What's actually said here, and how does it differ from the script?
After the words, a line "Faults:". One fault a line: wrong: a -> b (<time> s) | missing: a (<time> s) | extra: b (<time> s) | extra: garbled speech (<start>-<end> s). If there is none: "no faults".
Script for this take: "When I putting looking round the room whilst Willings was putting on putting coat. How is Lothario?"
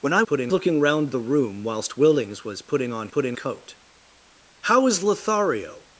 "When I putting looking round the room whilst Willings was putting on putting coat. How is Lothario?"
Faults:
no faults